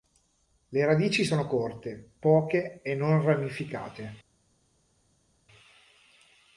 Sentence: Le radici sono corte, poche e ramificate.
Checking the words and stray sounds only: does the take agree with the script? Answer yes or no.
no